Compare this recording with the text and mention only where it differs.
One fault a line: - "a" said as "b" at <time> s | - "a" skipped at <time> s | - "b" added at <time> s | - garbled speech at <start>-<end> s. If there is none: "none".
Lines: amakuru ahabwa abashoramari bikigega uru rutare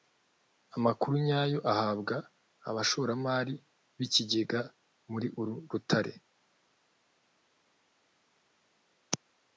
- "nyayo" added at 1.3 s
- "muri" added at 5.1 s